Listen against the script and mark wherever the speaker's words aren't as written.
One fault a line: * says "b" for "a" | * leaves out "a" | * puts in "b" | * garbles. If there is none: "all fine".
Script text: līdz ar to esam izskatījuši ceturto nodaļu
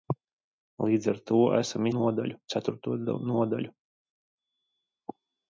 * says "nodaļu" for "izskatījuši"